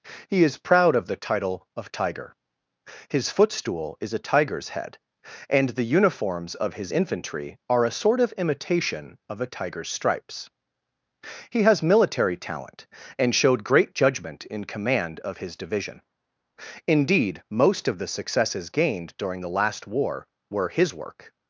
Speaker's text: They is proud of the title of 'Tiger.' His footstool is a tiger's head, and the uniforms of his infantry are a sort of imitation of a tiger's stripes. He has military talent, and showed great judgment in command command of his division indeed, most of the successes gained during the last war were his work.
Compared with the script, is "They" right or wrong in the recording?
wrong